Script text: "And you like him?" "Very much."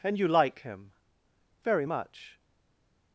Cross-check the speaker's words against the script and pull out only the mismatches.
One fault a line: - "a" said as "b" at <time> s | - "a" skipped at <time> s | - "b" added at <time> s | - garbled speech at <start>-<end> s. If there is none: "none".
none